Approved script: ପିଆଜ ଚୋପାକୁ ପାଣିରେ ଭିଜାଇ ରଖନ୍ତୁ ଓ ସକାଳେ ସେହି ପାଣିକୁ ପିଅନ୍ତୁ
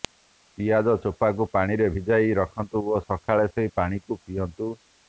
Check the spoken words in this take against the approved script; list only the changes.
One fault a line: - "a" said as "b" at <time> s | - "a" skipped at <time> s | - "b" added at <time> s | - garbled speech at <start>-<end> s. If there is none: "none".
none